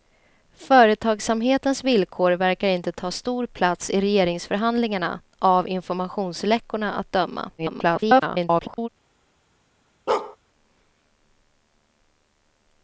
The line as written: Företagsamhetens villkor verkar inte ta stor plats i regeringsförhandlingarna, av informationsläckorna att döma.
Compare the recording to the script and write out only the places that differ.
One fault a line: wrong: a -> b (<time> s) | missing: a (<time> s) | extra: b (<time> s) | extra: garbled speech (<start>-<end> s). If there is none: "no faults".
extra: garbled speech (7.6-8.9 s)